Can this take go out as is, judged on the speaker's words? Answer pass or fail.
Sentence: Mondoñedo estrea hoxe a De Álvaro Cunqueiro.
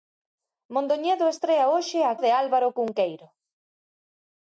pass